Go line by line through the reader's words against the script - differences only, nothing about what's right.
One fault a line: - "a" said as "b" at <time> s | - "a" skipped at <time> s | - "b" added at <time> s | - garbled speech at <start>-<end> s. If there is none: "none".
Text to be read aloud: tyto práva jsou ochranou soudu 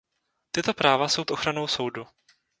none